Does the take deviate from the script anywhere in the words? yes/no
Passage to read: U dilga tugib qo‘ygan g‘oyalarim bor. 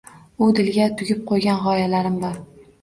no